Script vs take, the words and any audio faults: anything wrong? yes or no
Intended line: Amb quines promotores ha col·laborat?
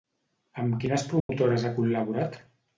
yes